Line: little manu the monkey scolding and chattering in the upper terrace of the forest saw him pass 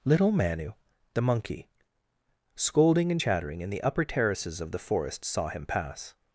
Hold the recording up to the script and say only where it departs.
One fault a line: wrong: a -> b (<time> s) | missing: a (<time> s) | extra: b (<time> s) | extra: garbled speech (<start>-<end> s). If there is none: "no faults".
wrong: terrace -> terraces (4.0 s)